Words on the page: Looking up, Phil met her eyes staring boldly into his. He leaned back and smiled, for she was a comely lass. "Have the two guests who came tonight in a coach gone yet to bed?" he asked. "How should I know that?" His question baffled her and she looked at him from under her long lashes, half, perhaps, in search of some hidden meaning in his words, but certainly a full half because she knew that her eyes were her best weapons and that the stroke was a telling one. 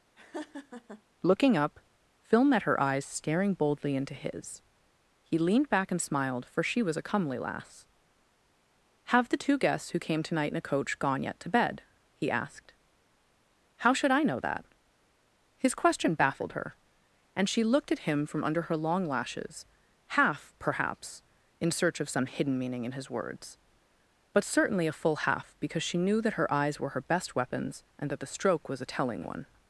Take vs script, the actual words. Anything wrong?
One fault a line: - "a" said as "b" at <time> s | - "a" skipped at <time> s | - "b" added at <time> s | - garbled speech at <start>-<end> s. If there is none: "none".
none